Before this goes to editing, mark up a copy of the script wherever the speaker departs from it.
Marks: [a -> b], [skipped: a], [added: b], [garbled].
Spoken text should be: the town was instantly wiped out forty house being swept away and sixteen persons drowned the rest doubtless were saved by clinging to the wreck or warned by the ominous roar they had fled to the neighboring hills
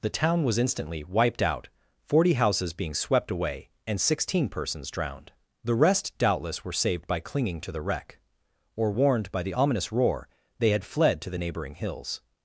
the town was instantly wiped out forty [house -> houses] being swept away and sixteen persons drowned the rest doubtless were saved by clinging to the wreck or warned by the ominous roar they had fled to the neighboring hills